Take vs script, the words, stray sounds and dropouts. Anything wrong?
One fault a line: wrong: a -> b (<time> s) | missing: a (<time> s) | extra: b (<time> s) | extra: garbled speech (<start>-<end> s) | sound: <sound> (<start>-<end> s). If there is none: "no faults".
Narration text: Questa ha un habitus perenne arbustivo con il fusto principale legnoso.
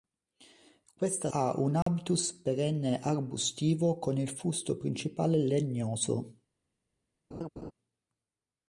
sound: dropout (1.8-1.9 s)
sound: laugh (7.3-7.7 s)